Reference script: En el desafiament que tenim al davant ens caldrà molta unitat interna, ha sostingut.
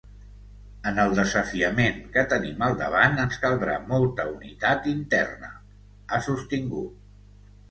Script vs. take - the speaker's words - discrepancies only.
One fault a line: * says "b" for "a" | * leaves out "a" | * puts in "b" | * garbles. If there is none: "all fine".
all fine